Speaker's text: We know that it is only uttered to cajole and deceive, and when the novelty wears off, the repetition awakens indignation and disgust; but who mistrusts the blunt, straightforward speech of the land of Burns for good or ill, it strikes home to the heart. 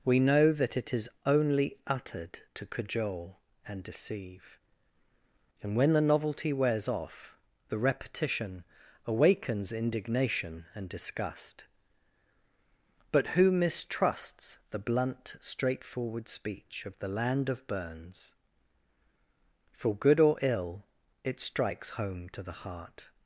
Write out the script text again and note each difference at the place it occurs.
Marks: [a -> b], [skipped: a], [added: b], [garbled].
We know that it is only uttered to cajole and deceive, and when the novelty wears off, the repetition awakens indignation and disgust; but who mistrusts the blunt, straightforward speech of the land of Burns for good or ill, it strikes home to the heart.